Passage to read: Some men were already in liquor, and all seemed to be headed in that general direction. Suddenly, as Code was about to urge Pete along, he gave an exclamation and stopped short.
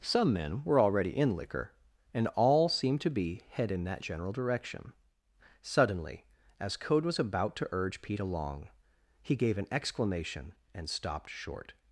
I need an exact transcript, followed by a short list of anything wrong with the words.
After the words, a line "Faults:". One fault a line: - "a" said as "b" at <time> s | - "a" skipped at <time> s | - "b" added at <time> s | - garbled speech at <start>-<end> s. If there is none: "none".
Some men were already in liquor, and all seemed to be head in that general direction. Suddenly, as Code was about to urge Pete along, he gave an exclamation and stopped short.
Faults:
- "headed" said as "head" at 3.5 s